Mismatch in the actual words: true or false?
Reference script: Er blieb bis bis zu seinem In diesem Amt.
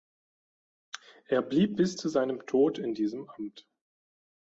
true